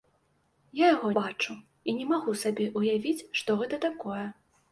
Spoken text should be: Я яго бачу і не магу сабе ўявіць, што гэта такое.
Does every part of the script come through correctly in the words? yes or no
yes